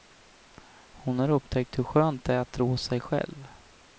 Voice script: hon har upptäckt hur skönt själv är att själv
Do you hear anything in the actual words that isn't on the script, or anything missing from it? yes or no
yes